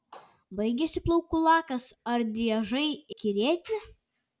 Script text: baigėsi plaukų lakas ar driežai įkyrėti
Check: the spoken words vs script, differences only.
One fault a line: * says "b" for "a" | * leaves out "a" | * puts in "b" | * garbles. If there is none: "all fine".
all fine